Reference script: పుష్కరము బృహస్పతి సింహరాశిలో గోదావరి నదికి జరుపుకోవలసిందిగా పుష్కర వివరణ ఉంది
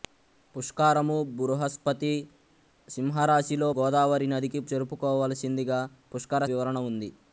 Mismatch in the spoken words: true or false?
false